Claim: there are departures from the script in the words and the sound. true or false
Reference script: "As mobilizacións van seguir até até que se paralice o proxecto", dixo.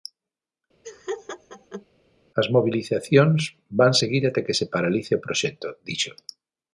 true